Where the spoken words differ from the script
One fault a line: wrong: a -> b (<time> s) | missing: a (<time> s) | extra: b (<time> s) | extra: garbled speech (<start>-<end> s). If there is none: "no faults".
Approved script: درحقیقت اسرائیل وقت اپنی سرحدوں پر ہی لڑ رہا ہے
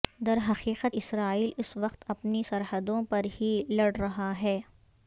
extra: اس (1.6 s)